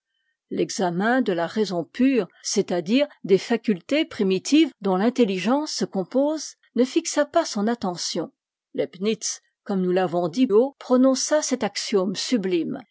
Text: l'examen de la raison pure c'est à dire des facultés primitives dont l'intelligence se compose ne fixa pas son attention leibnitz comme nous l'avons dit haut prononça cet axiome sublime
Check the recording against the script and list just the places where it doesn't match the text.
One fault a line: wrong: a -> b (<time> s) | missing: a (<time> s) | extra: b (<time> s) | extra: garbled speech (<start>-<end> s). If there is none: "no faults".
no faults